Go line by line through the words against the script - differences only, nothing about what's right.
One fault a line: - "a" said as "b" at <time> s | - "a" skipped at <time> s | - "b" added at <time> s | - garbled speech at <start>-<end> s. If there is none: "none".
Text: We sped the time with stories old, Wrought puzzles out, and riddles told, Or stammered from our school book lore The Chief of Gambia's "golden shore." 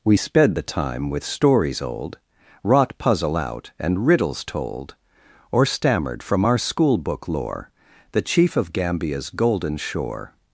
- "puzzles" said as "puzzle" at 3.0 s